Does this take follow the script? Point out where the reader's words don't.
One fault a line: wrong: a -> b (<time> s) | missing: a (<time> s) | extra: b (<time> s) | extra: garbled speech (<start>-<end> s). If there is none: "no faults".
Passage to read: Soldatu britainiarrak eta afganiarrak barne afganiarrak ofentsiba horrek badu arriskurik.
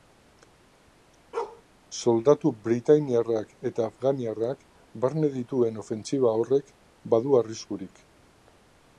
wrong: afganiarrak -> dituen (5.4 s)